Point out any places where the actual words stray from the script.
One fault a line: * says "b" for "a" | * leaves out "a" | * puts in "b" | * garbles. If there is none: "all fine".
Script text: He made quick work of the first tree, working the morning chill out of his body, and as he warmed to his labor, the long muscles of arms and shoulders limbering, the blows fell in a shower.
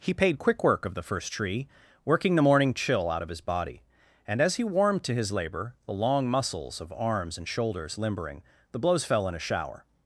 * says "paid" for "made"